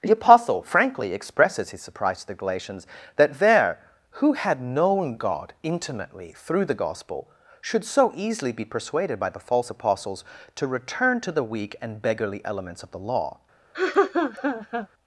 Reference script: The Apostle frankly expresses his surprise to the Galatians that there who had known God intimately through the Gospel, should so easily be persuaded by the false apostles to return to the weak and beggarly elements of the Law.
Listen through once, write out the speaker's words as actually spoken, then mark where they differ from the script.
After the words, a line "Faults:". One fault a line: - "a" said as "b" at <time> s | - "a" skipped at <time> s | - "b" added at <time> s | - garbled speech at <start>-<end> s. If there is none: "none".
The Apostle frankly expresses his surprise to the Galatians that there who had known God intimately through the Gospel, should so easily be persuaded by the false apostles to return to the weak and beggarly elements of the Law.
Faults:
none